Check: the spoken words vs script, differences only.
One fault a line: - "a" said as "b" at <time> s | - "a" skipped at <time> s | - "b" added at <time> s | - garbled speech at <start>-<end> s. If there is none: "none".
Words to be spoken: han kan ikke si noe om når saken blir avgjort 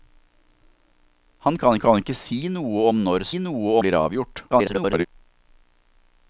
- "kan" added at 1.8 s
- "saken" said as "noe" at 3.4 s
- garbled speech at 4.5-5.1 s